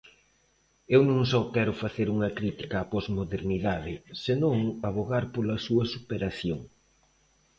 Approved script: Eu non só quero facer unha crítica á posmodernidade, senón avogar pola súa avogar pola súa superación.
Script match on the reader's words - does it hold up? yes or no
no